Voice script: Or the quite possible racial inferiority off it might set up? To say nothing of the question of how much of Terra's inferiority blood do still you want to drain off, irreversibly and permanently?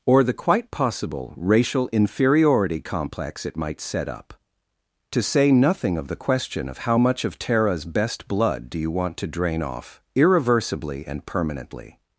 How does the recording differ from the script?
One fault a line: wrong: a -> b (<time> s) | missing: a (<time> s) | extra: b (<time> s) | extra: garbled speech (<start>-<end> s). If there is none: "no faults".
wrong: off -> complex (2.8 s)
wrong: inferiority -> best (7.8 s)
missing: still (8.8 s)